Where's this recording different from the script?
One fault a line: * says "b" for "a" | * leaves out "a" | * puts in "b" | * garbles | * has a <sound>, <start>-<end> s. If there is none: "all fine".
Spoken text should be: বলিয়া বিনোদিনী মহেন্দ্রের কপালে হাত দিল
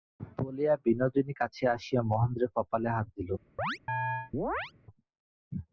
* puts in "কাছে আসিয়া"
* has a chirp, 3.6-4.7 s